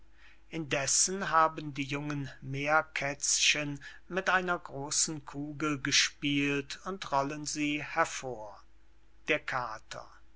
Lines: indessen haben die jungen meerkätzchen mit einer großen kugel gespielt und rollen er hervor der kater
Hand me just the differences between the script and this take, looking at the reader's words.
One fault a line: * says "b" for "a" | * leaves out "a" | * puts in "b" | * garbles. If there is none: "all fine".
* says "sie" for "er"